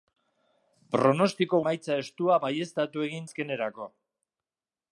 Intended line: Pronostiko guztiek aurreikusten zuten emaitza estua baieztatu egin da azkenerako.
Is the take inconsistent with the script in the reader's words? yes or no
yes